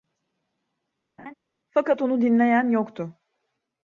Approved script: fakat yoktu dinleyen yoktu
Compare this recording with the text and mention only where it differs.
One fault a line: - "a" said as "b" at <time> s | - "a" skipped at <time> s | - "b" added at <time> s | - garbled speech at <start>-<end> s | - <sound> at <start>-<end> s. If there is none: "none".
- laugh at 1.2-1.3 s
- "yoktu" said as "onu" at 2.0 s